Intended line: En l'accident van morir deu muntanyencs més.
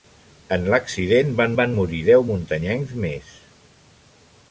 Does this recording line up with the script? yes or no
no